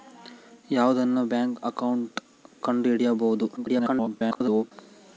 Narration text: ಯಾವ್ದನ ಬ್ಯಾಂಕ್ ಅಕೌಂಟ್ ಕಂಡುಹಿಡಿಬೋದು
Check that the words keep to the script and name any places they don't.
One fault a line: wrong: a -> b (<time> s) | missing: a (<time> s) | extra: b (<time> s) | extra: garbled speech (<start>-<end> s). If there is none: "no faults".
extra: garbled speech (3.6-4.7 s)